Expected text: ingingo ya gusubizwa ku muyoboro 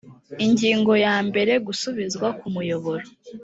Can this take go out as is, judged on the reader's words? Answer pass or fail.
fail